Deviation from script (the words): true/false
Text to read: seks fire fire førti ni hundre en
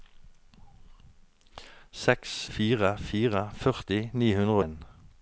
false